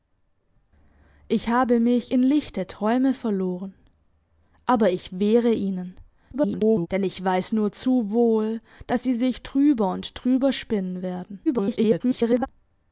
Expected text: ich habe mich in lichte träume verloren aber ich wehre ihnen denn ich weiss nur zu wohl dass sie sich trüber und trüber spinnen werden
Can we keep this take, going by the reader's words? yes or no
no